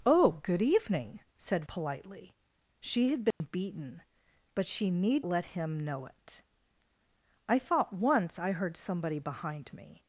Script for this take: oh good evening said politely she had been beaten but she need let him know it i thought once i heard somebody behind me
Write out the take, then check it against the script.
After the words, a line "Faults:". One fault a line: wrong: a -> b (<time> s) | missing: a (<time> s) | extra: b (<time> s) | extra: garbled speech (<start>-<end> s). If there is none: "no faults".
oh good evening said politely she had been beaten but she need let him know it i thought once i heard somebody behind me
Faults:
no faults